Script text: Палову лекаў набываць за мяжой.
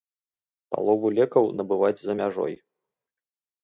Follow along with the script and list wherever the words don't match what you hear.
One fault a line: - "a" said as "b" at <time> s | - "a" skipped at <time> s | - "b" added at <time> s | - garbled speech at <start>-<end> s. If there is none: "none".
none